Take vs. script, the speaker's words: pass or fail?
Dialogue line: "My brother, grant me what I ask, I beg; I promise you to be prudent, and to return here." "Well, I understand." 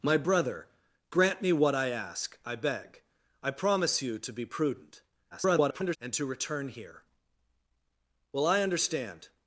fail